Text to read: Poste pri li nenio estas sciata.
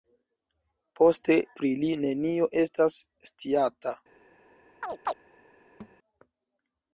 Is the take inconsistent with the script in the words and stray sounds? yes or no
yes